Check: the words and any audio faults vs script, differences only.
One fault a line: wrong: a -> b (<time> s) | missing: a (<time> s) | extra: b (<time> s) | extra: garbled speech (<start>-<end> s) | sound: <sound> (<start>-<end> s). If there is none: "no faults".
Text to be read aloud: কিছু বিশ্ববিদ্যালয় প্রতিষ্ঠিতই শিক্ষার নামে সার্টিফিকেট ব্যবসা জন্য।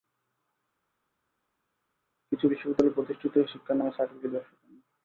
no faults